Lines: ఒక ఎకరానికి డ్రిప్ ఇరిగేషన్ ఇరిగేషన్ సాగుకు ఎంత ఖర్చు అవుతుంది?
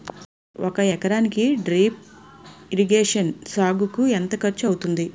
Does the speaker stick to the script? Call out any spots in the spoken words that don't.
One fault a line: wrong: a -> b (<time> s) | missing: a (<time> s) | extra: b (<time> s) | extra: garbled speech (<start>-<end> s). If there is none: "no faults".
missing: ఇరిగేషన్ (3.3 s)